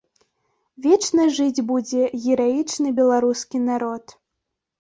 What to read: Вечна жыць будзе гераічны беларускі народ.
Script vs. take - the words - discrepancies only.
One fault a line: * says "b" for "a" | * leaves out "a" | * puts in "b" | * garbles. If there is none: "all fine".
all fine